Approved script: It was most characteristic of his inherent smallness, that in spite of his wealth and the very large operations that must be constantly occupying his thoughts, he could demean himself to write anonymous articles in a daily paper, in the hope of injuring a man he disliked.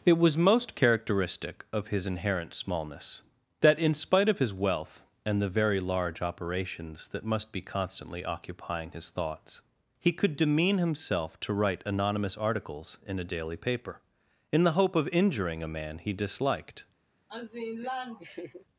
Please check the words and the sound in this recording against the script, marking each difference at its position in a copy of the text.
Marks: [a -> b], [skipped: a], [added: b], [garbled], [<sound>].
It was most characteristic of his inherent smallness, that in spite of his wealth and the very large operations that must be constantly occupying his thoughts, he could demean himself to write anonymous articles in a daily paper, in the hope of injuring a man he disliked. [laugh]